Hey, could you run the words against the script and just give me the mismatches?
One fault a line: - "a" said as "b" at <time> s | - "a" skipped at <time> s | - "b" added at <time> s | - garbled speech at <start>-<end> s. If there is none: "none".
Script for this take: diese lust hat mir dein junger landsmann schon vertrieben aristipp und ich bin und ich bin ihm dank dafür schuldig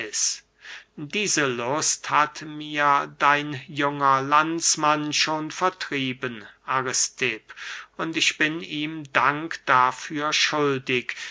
- "und ich bin" skipped at 8.6 s